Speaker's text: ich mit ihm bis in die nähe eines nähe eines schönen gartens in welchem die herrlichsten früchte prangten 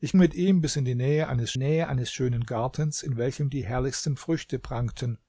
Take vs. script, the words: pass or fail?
pass